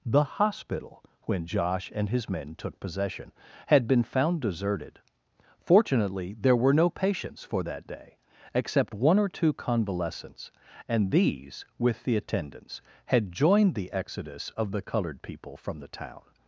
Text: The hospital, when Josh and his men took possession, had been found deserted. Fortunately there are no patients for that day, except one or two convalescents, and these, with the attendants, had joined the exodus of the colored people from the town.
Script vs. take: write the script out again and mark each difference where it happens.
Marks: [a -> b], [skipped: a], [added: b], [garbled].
The hospital, when Josh and his men took possession, had been found deserted. Fortunately there [are -> were] no patients for that day, except one or two convalescents, and these, with the attendants, had joined the exodus of the colored people from the town.